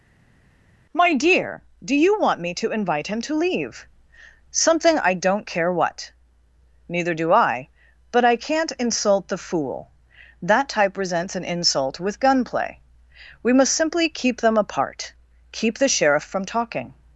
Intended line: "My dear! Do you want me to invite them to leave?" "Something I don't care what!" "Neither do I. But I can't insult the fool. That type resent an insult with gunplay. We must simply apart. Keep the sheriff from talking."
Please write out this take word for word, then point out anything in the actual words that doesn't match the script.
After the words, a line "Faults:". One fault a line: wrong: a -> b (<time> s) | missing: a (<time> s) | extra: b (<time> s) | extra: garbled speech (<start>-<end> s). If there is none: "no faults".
"My dear! Do you want me to invite him to leave?" "Something I don't care what!" "Neither do I. But I can't insult the fool. That type resents an insult with gunplay. We must simply keep them apart. Keep the sheriff from talking."
Faults:
wrong: them -> him (3.1 s)
wrong: resent -> resents (11.0 s)
extra: keep them (14.1 s)